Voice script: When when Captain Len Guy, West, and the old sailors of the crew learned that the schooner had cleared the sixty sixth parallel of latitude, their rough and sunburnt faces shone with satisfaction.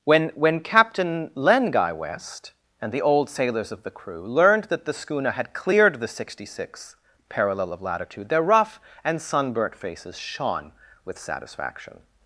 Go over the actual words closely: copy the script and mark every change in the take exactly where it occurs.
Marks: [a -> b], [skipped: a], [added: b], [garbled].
When when Captain Len Guy, West, and the old sailors of the crew learned that the schooner had cleared the sixty sixth parallel of latitude, their rough and sunburnt faces shone with satisfaction.